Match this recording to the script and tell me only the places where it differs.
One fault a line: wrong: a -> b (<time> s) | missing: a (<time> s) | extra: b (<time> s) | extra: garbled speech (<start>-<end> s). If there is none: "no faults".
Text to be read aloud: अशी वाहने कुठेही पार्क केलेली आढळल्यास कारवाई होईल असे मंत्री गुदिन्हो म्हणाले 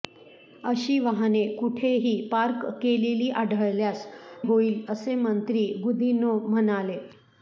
missing: कारवाई (4.1 s)